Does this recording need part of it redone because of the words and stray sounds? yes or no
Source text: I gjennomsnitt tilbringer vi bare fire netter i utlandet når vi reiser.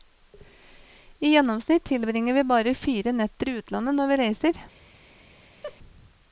yes